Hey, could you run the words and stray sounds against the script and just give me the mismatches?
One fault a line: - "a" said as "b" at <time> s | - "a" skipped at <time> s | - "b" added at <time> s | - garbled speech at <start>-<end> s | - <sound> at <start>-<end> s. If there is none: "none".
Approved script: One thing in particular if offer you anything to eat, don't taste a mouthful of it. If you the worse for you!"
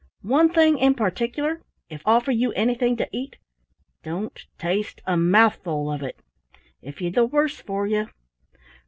none